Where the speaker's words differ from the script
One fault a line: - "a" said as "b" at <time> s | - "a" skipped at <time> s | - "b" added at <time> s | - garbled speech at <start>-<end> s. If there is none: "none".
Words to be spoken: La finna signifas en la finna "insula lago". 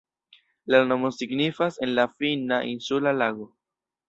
- "finna" said as "nomo" at 0.9 s